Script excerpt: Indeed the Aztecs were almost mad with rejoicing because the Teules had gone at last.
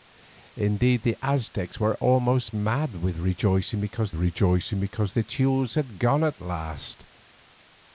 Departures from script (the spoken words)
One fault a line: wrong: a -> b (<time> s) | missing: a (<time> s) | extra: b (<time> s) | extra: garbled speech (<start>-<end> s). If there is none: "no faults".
extra: rejoicing because (4.2 s)